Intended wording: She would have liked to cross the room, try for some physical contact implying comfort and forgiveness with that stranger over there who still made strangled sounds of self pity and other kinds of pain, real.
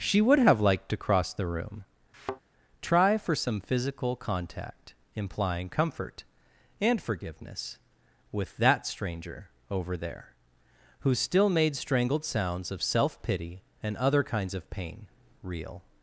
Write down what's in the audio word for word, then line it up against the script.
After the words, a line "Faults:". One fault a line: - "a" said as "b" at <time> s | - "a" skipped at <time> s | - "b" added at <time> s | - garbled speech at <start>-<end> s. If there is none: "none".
She would have liked to cross the room, try for some physical contact implying comfort and forgiveness with that stranger over there who still made strangled sounds of self pity and other kinds of pain, real.
Faults:
none